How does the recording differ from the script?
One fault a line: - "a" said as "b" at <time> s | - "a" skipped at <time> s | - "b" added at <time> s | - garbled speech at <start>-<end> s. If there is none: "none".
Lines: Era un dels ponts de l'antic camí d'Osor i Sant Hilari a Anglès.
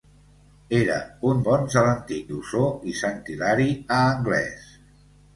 - "dels" skipped at 1.4 s
- "camí" skipped at 2.3 s